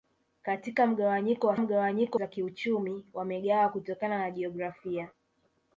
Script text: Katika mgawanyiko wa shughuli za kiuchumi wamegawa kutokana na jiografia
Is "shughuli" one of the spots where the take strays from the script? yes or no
yes